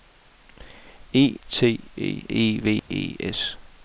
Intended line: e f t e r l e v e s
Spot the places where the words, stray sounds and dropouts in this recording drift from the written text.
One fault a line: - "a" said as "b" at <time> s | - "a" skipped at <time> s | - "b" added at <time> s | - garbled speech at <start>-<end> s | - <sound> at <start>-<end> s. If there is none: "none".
- "f" skipped at 1.4 s
- "r l" skipped at 2.3 s
- dropout at 2.8-2.9 s